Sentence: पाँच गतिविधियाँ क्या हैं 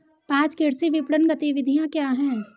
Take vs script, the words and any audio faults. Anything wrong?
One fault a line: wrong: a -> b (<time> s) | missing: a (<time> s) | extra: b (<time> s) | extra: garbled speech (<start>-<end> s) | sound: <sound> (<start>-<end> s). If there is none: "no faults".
extra: कृषि विपणन (0.6 s)